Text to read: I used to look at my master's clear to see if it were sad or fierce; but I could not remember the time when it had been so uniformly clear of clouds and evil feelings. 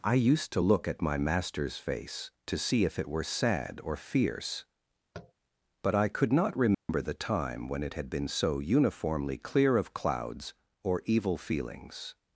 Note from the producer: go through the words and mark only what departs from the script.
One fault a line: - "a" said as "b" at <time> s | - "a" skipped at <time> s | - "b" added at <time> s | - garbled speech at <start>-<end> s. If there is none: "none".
- "clear" said as "face" at 1.8 s
- "and" said as "or" at 10.8 s